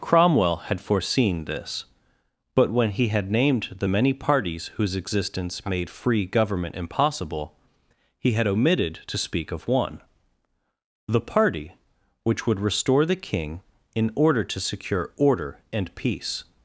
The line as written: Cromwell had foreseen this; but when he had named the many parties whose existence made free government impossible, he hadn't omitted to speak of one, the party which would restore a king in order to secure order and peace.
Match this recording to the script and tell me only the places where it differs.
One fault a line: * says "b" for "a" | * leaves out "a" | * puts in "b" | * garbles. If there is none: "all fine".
* says "had" for "hadn't"
* says "the" for "a"